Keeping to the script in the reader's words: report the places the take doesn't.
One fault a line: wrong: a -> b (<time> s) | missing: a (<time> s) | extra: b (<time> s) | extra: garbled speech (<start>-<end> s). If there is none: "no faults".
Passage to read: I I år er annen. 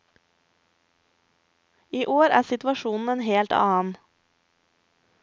missing: I (2.0 s)
extra: situasjonen en helt (2.5 s)